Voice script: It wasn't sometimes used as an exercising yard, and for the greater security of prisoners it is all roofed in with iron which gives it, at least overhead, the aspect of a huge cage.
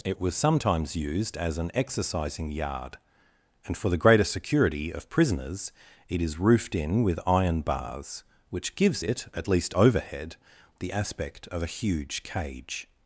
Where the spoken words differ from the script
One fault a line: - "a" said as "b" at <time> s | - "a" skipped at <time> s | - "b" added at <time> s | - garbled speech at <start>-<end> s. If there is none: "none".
- "wasn't" said as "was" at 0.2 s
- "all" skipped at 6.4 s
- "bars" added at 7.6 s